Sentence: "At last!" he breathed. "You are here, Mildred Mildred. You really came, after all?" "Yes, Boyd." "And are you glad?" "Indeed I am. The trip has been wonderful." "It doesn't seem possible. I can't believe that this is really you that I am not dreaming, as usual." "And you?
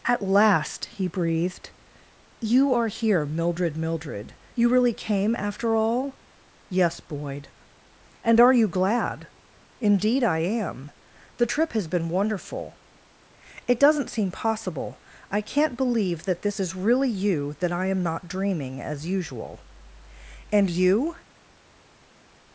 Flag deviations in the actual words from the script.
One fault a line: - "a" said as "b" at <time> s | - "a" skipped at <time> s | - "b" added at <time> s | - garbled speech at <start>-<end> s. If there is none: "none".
none